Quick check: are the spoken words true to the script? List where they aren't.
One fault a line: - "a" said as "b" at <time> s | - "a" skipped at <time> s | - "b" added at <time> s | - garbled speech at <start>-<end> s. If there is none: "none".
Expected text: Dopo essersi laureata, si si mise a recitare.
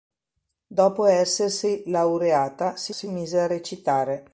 none